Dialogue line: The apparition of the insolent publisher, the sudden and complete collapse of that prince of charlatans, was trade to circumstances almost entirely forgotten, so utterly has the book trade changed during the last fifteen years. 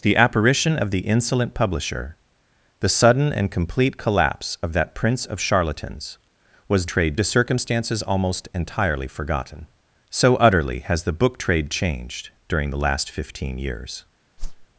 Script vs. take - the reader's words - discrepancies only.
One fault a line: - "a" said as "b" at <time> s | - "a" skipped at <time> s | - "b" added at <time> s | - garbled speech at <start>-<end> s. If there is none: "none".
none